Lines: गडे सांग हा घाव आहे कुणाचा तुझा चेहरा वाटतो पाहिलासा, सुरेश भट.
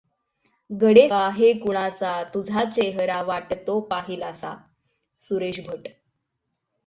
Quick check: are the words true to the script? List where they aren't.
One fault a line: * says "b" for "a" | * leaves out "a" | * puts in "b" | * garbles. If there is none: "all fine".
* leaves out "सांग हा घाव"